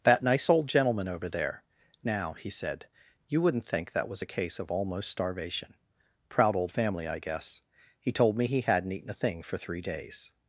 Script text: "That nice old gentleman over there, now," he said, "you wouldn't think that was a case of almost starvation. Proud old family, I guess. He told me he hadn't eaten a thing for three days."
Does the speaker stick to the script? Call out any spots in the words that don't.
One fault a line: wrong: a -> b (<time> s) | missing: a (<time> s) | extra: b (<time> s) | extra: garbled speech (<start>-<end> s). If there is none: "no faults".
no faults